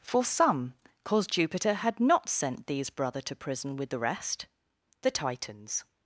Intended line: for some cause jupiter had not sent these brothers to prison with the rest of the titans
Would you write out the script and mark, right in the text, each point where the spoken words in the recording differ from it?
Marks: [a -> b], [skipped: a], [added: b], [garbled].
for some cause jupiter had not sent these [brothers -> brother] to prison with the rest [skipped: of] the titans